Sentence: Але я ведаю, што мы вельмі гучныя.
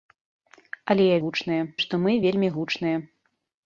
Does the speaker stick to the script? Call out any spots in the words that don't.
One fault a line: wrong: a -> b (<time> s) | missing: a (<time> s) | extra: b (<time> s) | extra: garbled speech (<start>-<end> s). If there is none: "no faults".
wrong: ведаю -> гучныя (1.3 s)